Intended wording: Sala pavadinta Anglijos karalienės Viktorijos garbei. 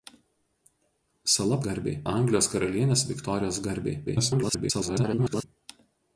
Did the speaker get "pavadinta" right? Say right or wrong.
wrong